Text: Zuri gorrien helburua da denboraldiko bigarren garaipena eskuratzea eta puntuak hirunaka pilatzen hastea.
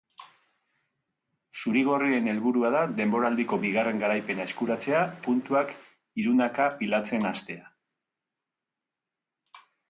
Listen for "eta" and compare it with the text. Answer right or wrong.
wrong